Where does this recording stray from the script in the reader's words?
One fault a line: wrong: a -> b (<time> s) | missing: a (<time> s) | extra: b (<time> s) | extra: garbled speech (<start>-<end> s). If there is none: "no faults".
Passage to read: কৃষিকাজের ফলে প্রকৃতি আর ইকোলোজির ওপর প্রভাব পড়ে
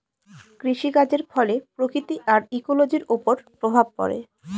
no faults